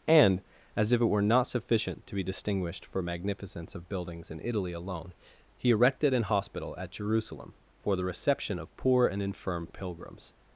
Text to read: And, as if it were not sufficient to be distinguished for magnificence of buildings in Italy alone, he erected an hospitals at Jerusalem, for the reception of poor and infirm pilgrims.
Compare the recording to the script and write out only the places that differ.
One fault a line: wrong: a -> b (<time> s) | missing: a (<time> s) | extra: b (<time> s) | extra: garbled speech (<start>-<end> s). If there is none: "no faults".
wrong: hospitals -> hospital (6.2 s)